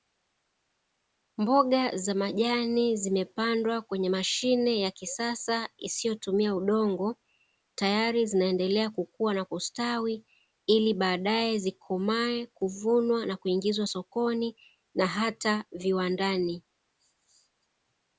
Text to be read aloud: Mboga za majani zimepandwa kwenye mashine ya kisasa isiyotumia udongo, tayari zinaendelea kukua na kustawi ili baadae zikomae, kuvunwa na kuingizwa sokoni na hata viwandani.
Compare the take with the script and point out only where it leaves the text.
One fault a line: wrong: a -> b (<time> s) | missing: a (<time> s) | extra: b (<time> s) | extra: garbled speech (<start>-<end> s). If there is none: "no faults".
no faults